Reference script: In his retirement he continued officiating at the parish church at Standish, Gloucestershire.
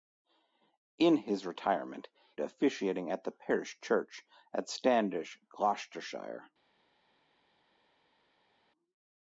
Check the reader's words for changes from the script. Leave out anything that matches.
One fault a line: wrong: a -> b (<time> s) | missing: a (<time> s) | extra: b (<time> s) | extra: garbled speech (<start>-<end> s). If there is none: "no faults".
missing: he continued (2.1 s)